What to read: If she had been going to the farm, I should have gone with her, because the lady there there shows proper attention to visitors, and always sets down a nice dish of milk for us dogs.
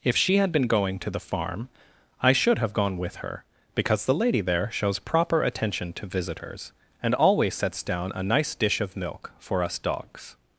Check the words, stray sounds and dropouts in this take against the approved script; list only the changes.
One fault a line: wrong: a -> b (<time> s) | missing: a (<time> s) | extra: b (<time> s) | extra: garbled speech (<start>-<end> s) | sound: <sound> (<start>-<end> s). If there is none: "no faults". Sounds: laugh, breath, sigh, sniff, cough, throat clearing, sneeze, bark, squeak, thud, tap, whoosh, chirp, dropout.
missing: there (4.7 s)